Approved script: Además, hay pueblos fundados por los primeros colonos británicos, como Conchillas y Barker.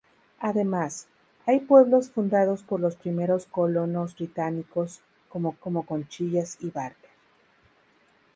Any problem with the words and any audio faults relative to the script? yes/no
yes